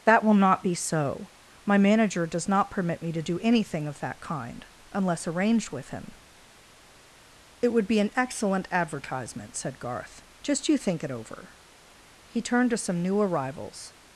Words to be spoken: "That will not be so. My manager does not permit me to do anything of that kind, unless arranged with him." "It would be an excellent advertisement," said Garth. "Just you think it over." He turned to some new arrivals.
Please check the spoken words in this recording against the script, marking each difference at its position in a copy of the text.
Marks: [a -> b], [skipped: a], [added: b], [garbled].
"That will not be so. My manager does not permit me to do anything of that kind, unless arranged with him." "It would be an excellent advertisement," said Garth. "Just you think it over." He turned to some new arrivals.